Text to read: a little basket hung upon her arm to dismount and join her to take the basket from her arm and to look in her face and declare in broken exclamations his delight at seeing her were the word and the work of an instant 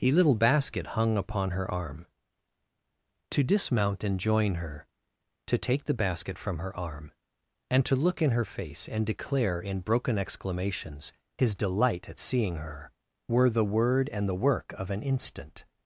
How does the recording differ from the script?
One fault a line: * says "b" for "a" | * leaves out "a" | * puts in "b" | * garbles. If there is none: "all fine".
all fine